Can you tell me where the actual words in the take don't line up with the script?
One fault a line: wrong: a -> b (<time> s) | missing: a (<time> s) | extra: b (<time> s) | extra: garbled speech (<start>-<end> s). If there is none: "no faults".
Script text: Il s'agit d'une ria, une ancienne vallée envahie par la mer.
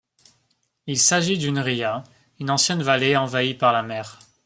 no faults